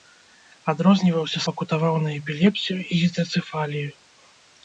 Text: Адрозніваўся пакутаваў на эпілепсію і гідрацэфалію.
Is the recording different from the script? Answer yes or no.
no